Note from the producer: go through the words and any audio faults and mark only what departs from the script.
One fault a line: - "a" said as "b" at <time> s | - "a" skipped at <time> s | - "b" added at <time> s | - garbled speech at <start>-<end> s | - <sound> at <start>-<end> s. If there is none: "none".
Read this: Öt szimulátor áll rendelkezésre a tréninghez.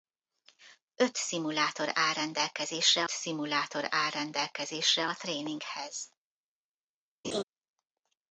- "szimulátor áll rendelkezésre" added at 3.1 s
- laugh at 7.2-7.4 s